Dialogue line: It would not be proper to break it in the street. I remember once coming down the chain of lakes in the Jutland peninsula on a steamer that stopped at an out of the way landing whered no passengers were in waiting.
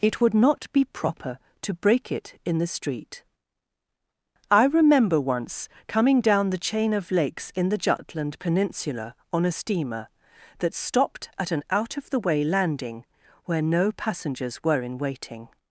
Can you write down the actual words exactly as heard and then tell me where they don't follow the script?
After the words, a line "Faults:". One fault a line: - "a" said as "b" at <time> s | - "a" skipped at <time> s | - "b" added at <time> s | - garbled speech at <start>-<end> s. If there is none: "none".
It would not be proper to break it in the street. I remember once coming down the chain of lakes in the Jutland peninsula on a steamer that stopped at an out of the way landing where no passengers were in waiting.
Faults:
- "whered" said as "where" at 13.4 s